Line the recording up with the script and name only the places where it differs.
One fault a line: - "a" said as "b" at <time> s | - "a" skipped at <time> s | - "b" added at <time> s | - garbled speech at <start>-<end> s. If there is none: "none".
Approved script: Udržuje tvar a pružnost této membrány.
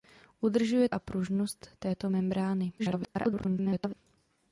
- "tvar" skipped at 0.9 s
- garbled speech at 2.8-3.9 s